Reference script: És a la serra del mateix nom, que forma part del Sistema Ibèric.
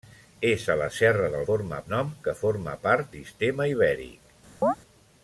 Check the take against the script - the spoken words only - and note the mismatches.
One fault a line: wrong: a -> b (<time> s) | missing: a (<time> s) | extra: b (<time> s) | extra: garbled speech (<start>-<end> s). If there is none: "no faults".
wrong: mateix -> forma (1.5 s)
missing: del (3.1 s)